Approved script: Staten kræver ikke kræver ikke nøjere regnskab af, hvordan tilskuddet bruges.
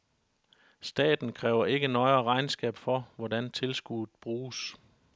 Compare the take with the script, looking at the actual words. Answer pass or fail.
fail